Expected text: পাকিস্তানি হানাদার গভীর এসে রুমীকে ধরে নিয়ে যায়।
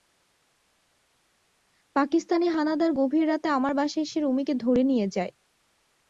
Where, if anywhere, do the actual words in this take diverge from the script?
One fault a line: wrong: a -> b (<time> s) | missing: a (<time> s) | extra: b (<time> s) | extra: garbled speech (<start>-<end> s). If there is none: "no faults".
extra: রাতে আমার বাসায় (3.3 s)